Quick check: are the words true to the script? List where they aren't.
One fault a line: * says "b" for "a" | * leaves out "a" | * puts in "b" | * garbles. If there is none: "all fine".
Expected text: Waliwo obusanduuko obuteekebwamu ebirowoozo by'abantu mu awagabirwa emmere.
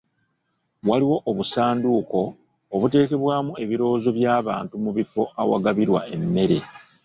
* puts in "bifo"